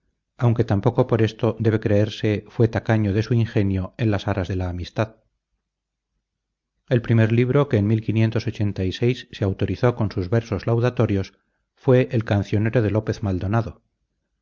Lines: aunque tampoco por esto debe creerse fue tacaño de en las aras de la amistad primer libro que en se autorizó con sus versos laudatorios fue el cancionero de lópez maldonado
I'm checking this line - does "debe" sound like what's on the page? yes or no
yes